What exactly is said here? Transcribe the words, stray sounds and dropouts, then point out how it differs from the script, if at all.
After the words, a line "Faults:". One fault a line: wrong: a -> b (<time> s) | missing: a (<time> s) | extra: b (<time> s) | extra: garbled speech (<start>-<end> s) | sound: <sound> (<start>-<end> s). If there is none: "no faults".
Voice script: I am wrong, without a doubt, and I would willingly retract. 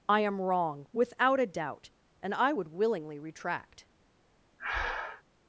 I am wrong, without a doubt, and I would willingly retract.
Faults:
sound: breath (4.6-5.2 s)